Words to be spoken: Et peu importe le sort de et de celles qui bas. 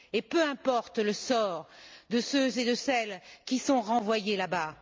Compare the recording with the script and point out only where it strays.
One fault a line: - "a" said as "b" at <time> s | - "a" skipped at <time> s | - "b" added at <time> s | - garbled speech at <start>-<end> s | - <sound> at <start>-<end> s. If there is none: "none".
- "ceux" added at 2.2 s
- "sont renvoyés là" added at 3.6 s